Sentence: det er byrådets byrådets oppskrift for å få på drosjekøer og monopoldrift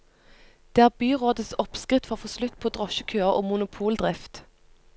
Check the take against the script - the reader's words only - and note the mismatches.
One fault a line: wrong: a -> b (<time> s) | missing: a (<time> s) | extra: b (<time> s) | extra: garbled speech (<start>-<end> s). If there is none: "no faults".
missing: byrådets (1.5 s)
extra: slutt (2.4 s)